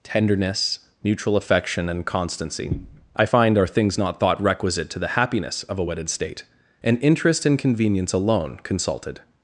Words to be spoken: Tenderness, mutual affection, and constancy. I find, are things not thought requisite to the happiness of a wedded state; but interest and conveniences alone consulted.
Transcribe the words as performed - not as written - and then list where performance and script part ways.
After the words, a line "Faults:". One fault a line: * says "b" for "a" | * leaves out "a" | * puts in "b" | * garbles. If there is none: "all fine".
Tenderness, mutual affection, and constancy. I find, are things not thought requisite to the happiness of a wedded state; and interest and convenience alone consulted.
Faults:
* says "and" for "but"
* says "convenience" for "conveniences"